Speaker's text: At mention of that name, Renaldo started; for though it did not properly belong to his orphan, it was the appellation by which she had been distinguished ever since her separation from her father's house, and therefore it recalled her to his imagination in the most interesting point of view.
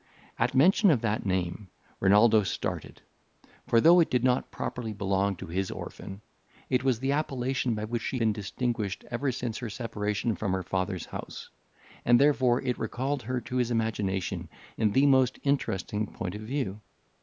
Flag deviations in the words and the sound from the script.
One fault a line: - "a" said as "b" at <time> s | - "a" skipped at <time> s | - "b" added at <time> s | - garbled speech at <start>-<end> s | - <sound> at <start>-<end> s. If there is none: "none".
- "had" skipped at 8.2 s